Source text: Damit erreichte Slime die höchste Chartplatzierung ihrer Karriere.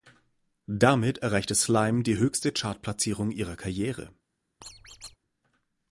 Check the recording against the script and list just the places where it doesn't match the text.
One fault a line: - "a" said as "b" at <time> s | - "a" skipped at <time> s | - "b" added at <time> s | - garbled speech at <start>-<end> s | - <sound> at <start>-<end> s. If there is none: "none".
- squeak at 4.6-5.2 s